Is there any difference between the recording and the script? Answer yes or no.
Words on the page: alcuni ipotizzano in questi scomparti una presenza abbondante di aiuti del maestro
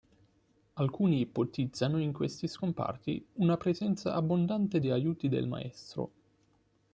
no